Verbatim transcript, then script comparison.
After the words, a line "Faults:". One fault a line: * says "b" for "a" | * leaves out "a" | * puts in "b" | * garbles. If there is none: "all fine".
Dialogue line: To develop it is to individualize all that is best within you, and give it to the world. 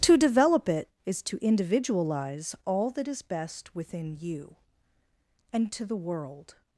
To develop it is to individualize all that is best within you, and to the world.
Faults:
* leaves out "give it"